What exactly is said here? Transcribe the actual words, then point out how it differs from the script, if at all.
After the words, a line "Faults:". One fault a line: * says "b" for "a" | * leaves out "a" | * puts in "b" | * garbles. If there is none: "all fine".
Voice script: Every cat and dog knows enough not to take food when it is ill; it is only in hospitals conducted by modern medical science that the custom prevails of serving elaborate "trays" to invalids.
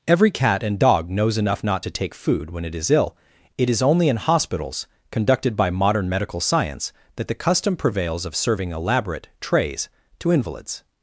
Every cat and dog knows enough not to take food when it is ill; it is only in hospitals conducted by modern medical science that the custom prevails of serving elaborate "trays" to invalids.
Faults:
all fine